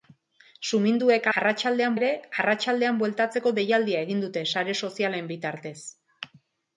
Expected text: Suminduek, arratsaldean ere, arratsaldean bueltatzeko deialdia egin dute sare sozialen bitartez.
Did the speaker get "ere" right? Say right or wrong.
right